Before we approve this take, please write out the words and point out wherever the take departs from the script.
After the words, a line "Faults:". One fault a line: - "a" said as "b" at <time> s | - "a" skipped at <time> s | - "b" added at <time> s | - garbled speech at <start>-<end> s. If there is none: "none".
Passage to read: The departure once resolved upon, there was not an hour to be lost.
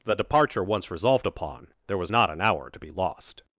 The departure once resolved upon, there was not an hour to be lost.
Faults:
none